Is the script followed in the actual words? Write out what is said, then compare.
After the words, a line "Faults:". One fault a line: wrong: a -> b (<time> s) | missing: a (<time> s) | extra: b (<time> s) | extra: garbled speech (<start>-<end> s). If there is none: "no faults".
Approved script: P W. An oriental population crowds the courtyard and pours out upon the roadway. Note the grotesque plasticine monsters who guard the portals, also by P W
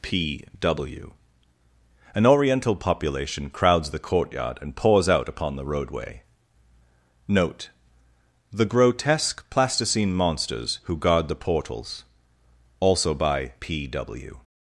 P W. An oriental population crowds the courtyard and pours out upon the roadway. Note the grotesque plasticine monsters who guard the portals, also by P W
Faults:
no faults